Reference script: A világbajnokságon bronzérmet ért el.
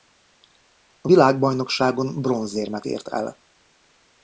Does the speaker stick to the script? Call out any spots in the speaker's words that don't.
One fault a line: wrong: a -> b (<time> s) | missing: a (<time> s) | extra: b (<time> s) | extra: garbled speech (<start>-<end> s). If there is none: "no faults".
no faults